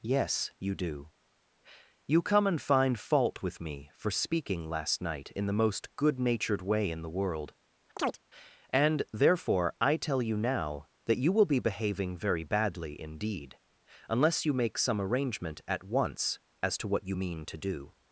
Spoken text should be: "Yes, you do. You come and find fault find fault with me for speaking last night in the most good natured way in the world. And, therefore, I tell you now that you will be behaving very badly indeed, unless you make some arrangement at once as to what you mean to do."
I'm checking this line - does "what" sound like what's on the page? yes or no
yes